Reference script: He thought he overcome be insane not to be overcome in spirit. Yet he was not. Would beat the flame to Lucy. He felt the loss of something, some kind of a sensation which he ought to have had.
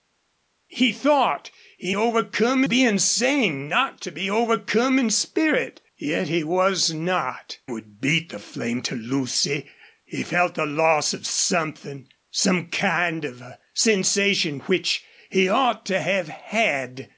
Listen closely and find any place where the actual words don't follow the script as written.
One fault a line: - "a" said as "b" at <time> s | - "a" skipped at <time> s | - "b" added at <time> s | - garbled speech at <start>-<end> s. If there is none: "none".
none